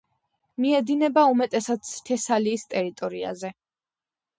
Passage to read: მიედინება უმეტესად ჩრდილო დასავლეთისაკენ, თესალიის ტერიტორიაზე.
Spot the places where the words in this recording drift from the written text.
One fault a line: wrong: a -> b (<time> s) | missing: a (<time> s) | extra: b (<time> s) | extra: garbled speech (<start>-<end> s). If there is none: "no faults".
missing: ჩრდილო დასავლეთისაკენ (1.9 s)